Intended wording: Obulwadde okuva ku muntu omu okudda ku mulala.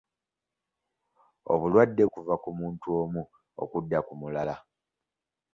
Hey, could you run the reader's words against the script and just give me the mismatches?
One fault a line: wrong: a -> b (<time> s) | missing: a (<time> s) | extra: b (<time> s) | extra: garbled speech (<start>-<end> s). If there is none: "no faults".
no faults